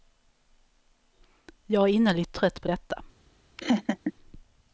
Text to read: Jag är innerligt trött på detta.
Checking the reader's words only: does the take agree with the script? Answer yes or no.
yes